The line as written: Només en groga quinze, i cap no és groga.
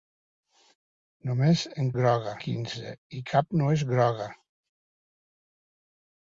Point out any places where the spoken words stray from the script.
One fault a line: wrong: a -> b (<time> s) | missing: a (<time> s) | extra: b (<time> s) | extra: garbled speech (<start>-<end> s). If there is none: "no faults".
no faults